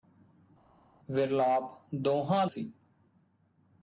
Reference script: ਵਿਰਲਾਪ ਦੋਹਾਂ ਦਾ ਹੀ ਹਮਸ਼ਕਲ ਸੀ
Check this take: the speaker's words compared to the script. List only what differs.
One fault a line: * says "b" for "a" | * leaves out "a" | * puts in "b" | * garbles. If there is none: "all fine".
* leaves out "ਦਾ ਹੀ ਹਮਸ਼ਕਲ"